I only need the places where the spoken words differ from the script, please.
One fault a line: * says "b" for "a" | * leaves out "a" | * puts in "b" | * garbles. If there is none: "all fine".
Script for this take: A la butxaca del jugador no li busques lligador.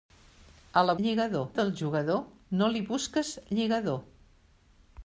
* says "lligador" for "butxaca"